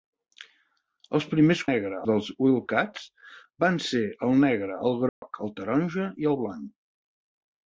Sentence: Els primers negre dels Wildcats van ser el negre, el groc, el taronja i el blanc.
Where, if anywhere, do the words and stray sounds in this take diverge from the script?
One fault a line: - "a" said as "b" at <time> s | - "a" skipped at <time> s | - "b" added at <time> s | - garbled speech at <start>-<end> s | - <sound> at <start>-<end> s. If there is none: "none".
- dropout at 5.1-5.2 s